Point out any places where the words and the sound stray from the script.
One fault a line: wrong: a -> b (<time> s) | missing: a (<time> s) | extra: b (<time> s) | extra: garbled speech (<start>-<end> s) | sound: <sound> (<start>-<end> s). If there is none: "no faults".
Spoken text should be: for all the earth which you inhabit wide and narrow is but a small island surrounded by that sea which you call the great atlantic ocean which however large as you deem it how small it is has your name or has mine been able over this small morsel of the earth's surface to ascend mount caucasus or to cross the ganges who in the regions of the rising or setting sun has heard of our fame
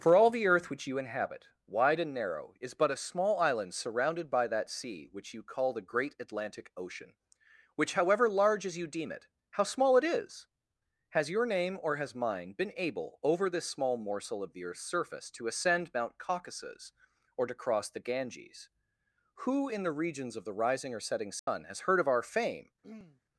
sound: dropout (21.4-21.5 s)
sound: throat clearing (22.8-23.2 s)